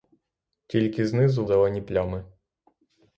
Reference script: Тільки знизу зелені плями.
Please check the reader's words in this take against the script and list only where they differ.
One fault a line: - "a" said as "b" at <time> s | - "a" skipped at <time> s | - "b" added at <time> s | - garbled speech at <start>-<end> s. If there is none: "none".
none